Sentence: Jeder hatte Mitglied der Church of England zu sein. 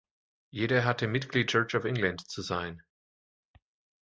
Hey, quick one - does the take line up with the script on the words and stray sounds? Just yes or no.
no